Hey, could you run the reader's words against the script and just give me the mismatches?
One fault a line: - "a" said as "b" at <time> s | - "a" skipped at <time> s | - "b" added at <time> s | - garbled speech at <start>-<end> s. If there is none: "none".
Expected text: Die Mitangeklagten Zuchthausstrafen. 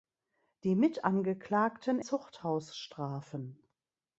none